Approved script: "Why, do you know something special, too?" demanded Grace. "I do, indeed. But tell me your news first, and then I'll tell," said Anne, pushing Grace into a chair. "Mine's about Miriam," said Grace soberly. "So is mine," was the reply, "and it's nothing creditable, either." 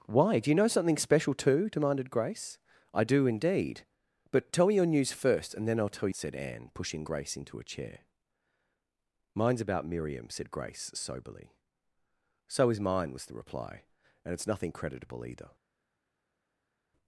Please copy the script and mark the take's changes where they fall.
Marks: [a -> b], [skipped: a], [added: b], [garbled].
"Why, do you know something special, too?" demanded Grace. "I do, indeed. But tell me your news first, and then I'll tell," said Anne, pushing Grace into a chair. "Mine's about Miriam," said Grace soberly. "So is mine," was the reply, "and it's nothing creditable, either."